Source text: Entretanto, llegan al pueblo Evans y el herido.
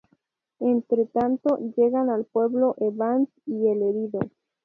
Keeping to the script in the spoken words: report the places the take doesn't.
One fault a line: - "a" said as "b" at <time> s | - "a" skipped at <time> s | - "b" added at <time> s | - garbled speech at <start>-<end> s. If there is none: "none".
none